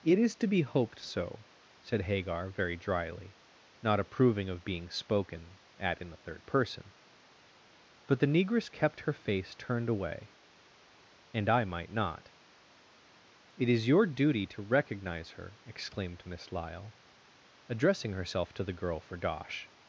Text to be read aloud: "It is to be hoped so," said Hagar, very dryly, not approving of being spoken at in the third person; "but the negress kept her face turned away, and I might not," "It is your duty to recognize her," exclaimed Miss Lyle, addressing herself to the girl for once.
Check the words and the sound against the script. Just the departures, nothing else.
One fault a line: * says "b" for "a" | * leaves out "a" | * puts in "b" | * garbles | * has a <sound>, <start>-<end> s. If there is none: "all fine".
* says "dosh" for "once"